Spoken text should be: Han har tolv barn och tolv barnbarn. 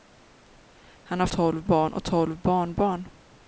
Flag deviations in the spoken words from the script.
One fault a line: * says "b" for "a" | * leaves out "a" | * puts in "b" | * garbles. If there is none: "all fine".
all fine